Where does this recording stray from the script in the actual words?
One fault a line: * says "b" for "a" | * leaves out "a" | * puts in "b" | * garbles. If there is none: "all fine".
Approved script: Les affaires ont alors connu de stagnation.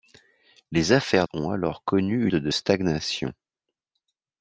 all fine